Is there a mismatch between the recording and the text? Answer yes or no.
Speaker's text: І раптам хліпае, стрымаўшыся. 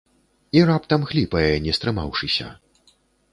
yes